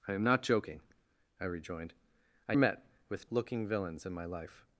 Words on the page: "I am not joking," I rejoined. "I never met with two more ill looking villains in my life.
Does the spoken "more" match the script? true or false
false